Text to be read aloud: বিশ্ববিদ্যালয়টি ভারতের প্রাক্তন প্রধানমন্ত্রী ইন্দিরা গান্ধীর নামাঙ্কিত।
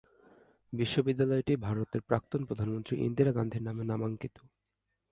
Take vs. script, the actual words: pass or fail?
fail